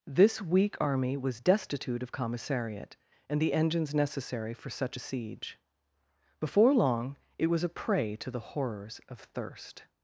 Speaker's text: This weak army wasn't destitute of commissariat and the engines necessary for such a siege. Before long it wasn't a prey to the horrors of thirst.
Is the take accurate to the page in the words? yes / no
no